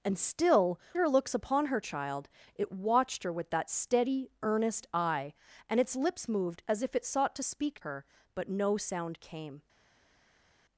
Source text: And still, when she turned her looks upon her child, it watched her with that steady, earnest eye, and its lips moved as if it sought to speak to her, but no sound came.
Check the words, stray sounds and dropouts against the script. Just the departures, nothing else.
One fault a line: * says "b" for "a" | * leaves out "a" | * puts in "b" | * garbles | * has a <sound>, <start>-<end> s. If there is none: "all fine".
* leaves out "when she turned"
* leaves out "to"